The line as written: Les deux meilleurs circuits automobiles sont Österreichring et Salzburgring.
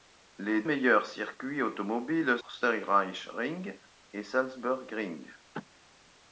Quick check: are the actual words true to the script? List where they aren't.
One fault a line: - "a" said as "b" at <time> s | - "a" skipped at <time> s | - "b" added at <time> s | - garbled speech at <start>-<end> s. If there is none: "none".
- "deux" skipped at 0.6 s
- "sont" skipped at 2.4 s